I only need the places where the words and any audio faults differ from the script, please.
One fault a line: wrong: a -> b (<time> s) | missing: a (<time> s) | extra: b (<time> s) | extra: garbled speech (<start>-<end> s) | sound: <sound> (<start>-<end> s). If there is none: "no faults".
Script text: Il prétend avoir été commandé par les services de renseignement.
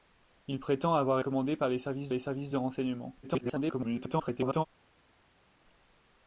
missing: été (1.2 s)
extra: les services (2.1 s)
extra: garbled speech (3.2-4.7 s)